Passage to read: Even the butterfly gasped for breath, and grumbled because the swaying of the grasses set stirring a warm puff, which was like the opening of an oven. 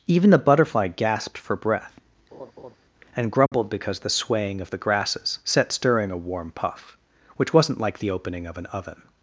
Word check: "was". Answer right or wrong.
wrong